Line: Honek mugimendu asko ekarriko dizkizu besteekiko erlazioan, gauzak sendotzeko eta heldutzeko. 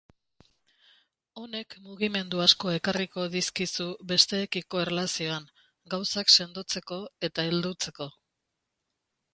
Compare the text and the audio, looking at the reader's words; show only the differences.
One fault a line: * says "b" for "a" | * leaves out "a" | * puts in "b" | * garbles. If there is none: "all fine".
all fine